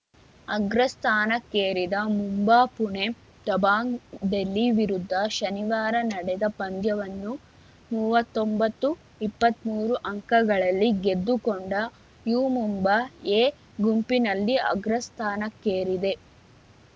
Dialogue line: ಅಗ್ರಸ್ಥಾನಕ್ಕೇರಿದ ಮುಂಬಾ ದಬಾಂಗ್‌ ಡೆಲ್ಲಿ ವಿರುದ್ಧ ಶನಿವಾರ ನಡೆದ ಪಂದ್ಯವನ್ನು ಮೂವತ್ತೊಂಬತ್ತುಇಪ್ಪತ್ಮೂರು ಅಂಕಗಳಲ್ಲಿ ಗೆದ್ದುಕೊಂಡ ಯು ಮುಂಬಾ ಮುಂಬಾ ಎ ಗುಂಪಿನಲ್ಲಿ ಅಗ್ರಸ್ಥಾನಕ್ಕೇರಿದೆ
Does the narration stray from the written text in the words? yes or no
yes